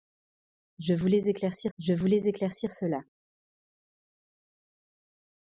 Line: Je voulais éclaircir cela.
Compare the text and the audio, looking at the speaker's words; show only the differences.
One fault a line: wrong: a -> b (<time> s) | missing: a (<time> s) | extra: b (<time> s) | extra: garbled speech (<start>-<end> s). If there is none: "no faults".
extra: je voulais éclaircir (1.8 s)